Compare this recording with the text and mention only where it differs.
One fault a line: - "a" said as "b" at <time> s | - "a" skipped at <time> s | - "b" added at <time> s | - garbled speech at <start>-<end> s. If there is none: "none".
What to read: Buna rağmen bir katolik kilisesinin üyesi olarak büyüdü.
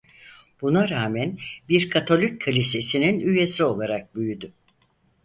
none